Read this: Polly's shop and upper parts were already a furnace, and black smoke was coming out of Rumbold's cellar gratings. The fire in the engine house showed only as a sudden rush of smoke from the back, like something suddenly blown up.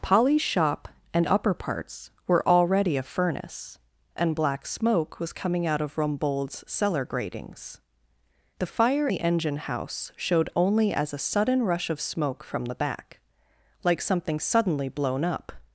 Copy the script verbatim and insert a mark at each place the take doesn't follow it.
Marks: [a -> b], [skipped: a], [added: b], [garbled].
Polly's shop and upper parts were already a furnace, and black smoke was coming out of Rumbold's cellar gratings. The fire [skipped: in] the engine house showed only as a sudden rush of smoke from the back, like something suddenly blown up.